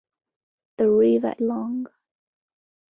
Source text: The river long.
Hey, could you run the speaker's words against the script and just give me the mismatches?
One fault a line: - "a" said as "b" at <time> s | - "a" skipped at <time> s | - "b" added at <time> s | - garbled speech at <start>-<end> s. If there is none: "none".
none